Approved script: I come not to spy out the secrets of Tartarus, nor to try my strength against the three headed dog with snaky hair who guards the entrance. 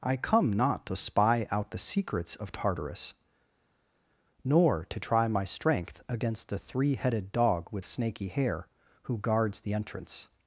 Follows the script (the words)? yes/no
yes